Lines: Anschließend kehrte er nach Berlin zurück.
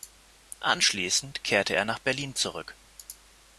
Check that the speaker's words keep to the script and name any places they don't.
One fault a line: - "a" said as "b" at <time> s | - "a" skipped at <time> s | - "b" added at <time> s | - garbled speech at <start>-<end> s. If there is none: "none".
none